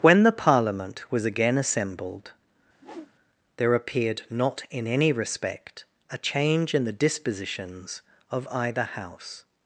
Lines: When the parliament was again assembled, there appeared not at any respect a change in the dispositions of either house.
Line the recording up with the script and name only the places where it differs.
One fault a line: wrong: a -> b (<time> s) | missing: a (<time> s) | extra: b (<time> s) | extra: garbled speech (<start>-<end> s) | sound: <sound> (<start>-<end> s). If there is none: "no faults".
sound: whoosh (2.7-3.1 s)
wrong: at -> in (4.7 s)